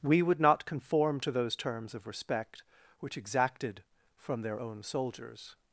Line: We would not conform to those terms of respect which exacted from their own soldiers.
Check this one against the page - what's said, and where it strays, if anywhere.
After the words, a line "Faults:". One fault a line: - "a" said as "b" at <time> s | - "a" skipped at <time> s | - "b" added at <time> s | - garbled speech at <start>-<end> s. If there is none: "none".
We would not conform to those terms of respect which exacted from their own soldiers.
Faults:
none